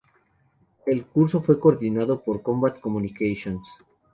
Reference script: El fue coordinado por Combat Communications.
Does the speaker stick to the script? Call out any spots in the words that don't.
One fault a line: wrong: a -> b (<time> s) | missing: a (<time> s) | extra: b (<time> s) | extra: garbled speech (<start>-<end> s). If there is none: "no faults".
extra: curso (1.1 s)